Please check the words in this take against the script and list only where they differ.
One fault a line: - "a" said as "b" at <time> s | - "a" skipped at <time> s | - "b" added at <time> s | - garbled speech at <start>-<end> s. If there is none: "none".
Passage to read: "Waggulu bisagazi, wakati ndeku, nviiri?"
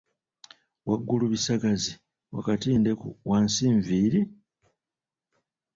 - "wansi" added at 3.3 s